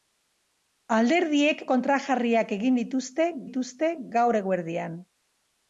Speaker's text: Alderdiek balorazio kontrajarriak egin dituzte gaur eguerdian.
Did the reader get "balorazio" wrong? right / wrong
wrong